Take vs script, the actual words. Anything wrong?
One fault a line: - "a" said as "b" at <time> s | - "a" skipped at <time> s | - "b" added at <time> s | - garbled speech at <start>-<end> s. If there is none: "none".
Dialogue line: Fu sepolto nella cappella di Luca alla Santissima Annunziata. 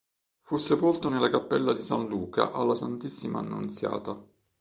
- "San" added at 1.8 s